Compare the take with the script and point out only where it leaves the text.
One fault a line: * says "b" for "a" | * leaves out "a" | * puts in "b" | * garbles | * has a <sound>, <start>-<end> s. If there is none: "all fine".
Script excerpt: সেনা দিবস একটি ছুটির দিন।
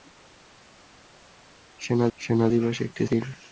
* puts in "সেনা"
* leaves out "ছুটির"